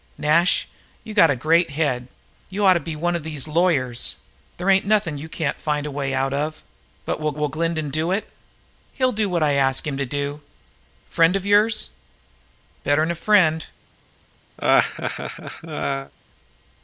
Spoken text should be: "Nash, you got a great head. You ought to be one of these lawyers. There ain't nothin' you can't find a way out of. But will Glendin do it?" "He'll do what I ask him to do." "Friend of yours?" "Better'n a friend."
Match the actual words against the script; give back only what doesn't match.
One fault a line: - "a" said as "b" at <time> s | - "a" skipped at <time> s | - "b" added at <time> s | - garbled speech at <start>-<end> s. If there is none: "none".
- "will" added at 7.4 s